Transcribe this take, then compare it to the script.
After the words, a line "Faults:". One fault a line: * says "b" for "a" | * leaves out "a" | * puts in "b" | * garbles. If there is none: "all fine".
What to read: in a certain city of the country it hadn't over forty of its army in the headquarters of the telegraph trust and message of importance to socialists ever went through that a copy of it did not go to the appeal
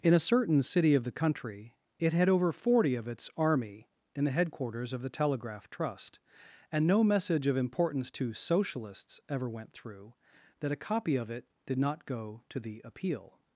in a certain city of the country it had over forty of its army in the headquarters of the telegraph trust and no message of importance to socialists ever went through that a copy of it did not go to the appeal
Faults:
* says "had" for "hadn't"
* puts in "no"